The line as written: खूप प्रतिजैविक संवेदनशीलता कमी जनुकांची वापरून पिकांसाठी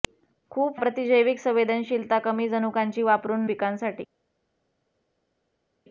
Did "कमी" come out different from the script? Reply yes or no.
no